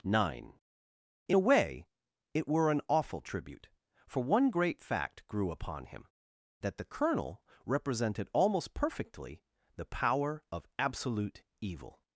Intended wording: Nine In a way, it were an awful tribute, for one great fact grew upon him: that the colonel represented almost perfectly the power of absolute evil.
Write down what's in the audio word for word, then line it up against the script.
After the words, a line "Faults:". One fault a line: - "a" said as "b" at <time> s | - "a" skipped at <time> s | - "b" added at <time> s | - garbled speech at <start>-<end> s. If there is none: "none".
Nine In a way, it were an awful tribute, for one great fact grew upon him: that the colonel represented almost perfectly the power of absolute evil.
Faults:
none